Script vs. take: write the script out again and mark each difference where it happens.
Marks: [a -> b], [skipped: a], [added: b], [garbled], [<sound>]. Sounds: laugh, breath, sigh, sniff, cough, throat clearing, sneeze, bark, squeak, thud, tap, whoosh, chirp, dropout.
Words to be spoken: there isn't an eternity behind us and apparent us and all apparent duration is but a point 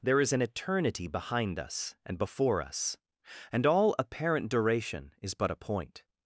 there [isn't -> is] an eternity behind us and [apparent -> before] us and all apparent duration is but a point